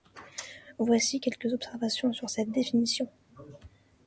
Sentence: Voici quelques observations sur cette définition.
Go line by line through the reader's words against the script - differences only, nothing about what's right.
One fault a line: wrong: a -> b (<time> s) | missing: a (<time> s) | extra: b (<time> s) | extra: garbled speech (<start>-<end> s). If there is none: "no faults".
no faults